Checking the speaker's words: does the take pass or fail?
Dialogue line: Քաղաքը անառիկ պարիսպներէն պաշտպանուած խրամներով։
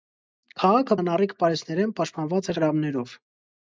pass